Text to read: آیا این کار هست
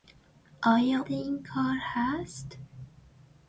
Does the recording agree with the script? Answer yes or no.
yes